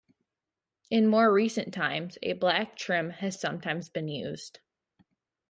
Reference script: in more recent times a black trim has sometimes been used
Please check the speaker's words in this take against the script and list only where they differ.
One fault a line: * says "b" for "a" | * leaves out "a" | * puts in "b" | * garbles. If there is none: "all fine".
all fine